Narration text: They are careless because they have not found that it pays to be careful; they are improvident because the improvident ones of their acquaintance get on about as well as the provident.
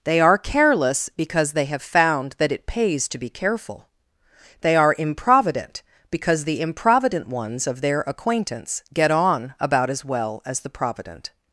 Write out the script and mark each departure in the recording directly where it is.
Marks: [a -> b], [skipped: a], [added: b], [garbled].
They are careless because they have [skipped: not] found that it pays to be careful; they are improvident because the improvident ones of their acquaintance get on about as well as the provident.